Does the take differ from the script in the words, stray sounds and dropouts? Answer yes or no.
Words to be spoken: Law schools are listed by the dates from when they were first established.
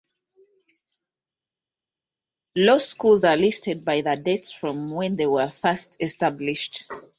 no